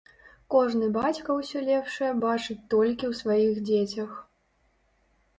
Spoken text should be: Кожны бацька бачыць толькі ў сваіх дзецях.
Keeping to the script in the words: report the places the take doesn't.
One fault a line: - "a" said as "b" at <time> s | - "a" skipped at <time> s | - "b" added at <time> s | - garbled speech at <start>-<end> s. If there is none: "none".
- "ўсё лепшае" added at 1.4 s